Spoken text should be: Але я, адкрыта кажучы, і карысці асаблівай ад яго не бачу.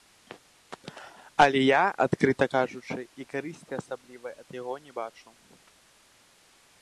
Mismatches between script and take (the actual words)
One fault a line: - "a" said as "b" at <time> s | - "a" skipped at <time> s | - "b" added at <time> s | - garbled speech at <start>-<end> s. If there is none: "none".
none